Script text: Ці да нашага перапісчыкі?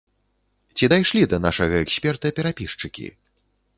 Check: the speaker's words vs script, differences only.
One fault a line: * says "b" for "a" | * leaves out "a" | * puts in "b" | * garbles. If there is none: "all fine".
* puts in "дайшлі"
* puts in "эксперта"